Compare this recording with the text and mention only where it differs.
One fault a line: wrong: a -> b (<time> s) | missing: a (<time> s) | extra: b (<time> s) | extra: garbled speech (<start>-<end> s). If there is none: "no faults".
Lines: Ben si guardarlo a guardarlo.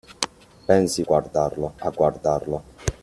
no faults